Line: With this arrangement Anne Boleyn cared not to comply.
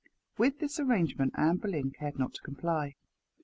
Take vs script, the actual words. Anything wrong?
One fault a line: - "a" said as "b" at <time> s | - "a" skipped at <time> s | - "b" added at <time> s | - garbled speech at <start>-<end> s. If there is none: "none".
none